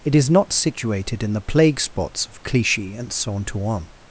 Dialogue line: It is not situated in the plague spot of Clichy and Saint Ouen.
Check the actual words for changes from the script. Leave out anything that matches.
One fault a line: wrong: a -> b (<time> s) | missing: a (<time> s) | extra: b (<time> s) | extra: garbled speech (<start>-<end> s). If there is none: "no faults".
wrong: spot -> spots (1.8 s)